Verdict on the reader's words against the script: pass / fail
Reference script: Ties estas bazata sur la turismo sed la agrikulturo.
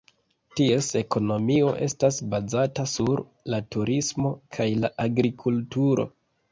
fail